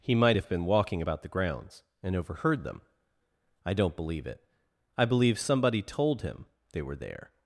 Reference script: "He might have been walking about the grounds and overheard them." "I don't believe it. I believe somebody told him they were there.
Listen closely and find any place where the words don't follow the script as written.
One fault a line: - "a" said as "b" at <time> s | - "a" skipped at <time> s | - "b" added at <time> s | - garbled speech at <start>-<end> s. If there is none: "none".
none